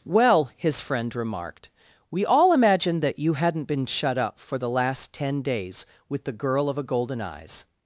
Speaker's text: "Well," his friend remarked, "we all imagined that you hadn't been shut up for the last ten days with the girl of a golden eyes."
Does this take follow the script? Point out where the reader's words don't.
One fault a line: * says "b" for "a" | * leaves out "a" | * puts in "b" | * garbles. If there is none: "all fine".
all fine